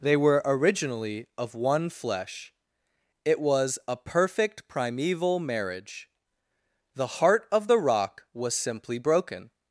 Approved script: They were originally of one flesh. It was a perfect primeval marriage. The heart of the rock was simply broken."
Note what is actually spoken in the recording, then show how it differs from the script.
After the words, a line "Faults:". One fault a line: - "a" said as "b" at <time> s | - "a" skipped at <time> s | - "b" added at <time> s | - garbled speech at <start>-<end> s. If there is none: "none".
They were originally of one flesh. It was a perfect primeval marriage. The heart of the rock was simply broken."
Faults:
none